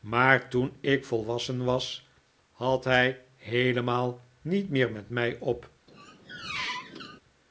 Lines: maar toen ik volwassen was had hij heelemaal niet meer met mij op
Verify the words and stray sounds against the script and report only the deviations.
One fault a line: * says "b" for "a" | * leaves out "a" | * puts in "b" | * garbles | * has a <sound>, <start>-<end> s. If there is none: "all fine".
* has a squeak, 5.9-7.2 s